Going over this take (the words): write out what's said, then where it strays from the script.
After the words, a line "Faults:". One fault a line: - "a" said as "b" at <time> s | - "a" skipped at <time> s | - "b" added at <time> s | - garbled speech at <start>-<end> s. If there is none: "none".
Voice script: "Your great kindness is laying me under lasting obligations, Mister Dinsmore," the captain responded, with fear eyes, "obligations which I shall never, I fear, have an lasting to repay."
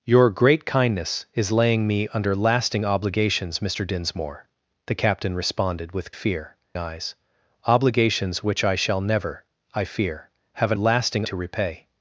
"Your great kindness is laying me under lasting obligations, Mister Dinsmore," the captain responded, with fear eyes, "obligations which I shall never, I fear, have an lasting to repay."
Faults:
none